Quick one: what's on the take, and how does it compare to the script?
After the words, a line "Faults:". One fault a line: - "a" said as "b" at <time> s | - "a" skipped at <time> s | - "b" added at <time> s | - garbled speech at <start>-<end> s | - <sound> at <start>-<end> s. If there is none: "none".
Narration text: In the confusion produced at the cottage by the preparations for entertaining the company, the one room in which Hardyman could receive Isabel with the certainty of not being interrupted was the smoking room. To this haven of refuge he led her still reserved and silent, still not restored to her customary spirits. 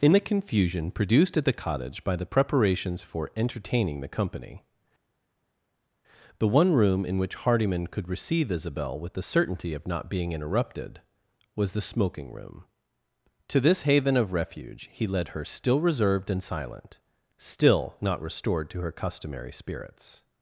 In the confusion produced at the cottage by the preparations for entertaining the company, the one room in which Hardyman could receive Isabel with the certainty of not being interrupted was the smoking room. To this haven of refuge he led her still reserved and silent, still not restored to her customary spirits.
Faults:
none